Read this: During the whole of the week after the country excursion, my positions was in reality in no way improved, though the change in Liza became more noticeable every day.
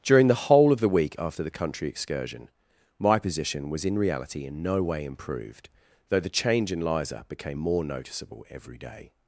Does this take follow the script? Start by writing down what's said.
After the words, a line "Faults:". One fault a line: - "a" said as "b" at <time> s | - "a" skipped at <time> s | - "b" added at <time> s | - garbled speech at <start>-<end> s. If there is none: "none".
During the whole of the week after the country excursion, my position was in reality in no way improved, though the change in Liza became more noticeable every day.
Faults:
- "positions" said as "position" at 3.2 s